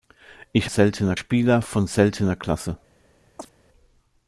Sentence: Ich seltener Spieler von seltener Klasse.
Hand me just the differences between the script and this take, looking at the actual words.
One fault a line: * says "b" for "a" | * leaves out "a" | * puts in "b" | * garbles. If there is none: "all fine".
all fine